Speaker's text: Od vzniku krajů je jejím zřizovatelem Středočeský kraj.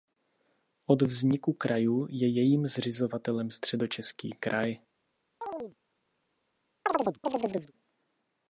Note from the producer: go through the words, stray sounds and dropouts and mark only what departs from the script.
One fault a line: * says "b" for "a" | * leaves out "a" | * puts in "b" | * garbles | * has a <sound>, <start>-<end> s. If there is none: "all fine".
* has a chirp, 5.4-5.8 s
* has a chirp, 6.9-7.7 s